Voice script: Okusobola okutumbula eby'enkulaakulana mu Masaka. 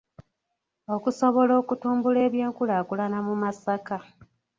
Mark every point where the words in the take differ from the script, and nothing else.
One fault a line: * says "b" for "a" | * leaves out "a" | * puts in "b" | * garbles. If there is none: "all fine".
all fine